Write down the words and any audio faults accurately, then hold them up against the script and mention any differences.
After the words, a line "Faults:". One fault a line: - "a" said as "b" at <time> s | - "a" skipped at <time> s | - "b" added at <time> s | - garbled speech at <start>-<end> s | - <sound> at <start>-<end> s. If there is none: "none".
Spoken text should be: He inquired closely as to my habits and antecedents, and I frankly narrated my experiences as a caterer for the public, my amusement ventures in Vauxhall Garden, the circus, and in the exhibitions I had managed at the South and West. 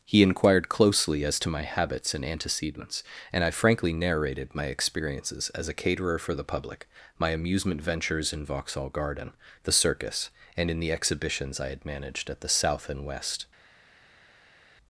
He inquired closely as to my habits and antecedents, and I frankly narrated my experiences as a caterer for the public, my amusement ventures in Vauxhall Garden, the circus, and in the exhibitions I had managed at the South and West.
Faults:
none